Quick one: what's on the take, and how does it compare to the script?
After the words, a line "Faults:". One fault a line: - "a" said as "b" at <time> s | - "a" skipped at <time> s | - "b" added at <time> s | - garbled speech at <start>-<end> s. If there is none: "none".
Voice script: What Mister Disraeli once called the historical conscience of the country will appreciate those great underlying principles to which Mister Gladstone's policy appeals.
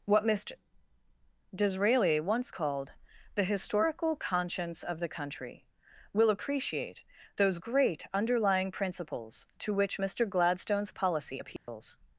What Mister Disraeli once called the historical conscience of the country will appreciate those great underlying principles to which Mister Gladstone's policy appeals.
Faults:
none